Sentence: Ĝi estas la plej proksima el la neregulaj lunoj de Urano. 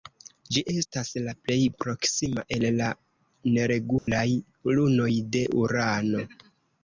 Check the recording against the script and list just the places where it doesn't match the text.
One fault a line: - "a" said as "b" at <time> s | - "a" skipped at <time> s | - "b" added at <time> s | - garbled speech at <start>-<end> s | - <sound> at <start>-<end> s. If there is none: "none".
- dropout at 4.0-4.1 s